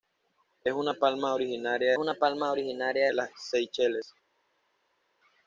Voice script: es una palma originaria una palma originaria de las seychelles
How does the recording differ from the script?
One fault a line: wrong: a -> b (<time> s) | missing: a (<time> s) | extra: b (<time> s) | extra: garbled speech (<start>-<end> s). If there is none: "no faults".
no faults